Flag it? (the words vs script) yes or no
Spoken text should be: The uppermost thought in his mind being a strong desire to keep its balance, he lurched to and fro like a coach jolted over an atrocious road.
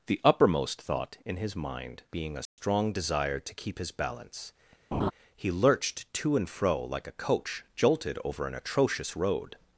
yes